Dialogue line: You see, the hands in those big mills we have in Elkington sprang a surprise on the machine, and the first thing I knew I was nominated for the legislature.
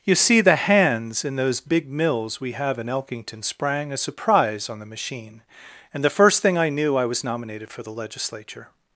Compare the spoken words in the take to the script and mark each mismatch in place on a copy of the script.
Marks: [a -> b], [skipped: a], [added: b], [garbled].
You see, the hands in those big mills we have in Elkington sprang a surprise on the machine, and the first thing I knew I was nominated for the legislature.